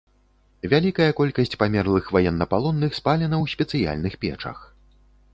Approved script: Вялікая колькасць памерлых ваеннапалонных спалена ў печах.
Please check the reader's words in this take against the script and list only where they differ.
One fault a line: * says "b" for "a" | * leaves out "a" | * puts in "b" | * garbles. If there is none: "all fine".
* puts in "спецыяльных"